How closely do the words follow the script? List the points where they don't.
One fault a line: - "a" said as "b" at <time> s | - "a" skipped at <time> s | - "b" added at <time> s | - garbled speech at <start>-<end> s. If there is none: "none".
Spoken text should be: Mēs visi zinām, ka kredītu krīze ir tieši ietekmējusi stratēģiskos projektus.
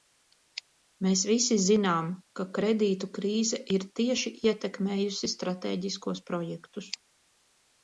none